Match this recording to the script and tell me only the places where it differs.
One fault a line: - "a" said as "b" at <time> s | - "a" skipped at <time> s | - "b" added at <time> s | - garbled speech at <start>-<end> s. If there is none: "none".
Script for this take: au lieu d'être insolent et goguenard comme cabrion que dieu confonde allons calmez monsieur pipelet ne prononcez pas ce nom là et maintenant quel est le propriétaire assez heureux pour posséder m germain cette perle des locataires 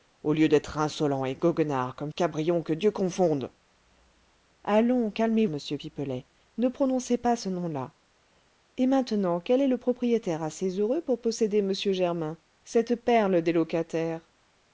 none